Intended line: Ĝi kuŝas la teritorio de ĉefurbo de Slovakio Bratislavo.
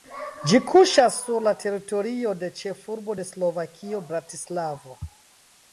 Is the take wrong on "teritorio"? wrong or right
right